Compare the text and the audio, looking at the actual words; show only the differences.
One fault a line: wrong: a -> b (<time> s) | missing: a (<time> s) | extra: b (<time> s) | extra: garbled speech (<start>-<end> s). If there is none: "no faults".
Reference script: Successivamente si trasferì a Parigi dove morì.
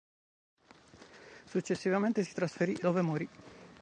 missing: a Parigi (2.8 s)